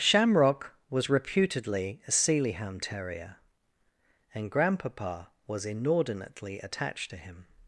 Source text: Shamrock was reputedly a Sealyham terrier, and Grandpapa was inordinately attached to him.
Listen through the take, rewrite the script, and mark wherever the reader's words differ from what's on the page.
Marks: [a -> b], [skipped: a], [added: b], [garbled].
Shamrock was reputedly a Sealyham terrier, and Grandpapa was inordinately attached to him.